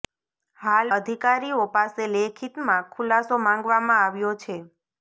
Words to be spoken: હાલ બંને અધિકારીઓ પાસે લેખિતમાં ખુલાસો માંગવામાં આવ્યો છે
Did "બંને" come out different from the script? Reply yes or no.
yes